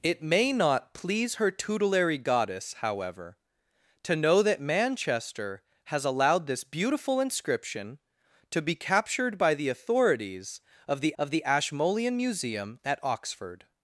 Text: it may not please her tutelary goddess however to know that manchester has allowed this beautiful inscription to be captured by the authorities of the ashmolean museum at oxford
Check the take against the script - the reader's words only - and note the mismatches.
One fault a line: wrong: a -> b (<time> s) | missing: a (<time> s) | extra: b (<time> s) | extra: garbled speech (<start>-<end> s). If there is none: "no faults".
extra: of the (11.2 s)